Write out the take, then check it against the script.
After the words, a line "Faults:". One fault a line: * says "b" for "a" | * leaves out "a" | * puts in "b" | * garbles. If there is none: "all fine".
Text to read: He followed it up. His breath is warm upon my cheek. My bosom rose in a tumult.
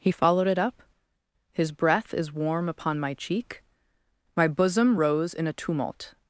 He followed it up. His breath is warm upon my cheek. My bosom rose in a tumult.
Faults:
all fine